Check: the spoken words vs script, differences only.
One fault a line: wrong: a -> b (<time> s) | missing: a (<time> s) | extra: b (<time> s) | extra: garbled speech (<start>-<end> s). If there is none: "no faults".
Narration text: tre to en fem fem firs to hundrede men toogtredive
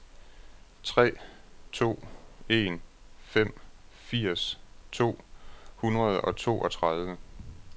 missing: fem (3.5 s)
wrong: men -> og (6.2 s)